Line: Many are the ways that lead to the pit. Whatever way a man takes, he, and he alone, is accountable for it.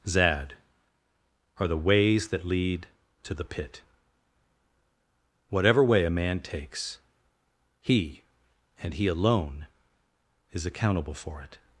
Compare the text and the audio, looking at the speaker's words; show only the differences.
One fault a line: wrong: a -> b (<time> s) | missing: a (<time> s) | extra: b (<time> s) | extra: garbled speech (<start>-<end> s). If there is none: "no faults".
wrong: Many -> Zad (0.1 s)